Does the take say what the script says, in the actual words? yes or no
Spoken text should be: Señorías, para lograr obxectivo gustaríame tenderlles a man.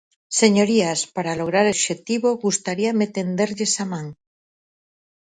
yes